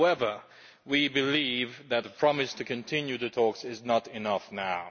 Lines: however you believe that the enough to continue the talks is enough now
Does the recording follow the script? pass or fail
fail